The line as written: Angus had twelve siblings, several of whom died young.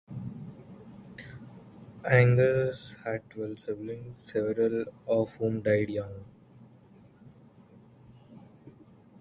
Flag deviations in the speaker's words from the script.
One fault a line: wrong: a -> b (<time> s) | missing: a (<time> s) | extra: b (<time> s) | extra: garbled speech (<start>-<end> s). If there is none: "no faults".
no faults